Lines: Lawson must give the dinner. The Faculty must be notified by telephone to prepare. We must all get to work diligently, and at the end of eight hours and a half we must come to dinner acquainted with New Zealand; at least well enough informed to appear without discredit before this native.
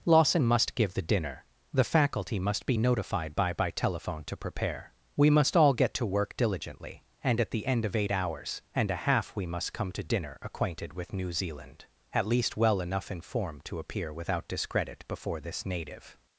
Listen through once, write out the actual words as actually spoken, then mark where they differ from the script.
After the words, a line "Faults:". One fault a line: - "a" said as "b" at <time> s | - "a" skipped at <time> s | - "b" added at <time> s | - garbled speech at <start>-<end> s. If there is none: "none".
Lawson must give the dinner. The Faculty must be notified by by telephone to prepare. We must all get to work diligently, and at the end of eight hours and a half we must come to dinner acquainted with New Zealand; at least well enough informed to appear without discredit before this native.
Faults:
- "by" added at 3.5 s